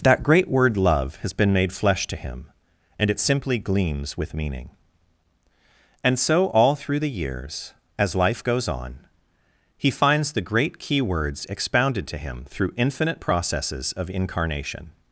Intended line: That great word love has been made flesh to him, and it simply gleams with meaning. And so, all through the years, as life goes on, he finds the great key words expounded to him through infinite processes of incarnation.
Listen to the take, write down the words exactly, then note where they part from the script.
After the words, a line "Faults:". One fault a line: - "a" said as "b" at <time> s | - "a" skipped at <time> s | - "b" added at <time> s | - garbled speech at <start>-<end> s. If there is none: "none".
That great word love has been made flesh to him, and it simply gleams with meaning. And so, all through the years, as life goes on, he finds the great key words expounded to him through infinite processes of incarnation.
Faults:
none